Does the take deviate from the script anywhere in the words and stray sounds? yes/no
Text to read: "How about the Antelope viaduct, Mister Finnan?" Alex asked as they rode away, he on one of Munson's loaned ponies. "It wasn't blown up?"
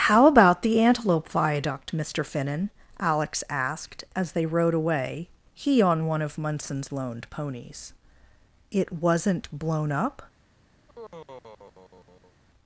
yes